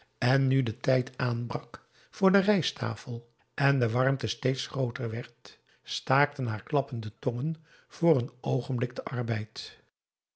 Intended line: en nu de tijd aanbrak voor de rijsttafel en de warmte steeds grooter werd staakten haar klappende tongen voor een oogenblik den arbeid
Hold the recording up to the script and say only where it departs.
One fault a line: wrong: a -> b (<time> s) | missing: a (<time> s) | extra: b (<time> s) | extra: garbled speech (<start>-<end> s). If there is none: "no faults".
no faults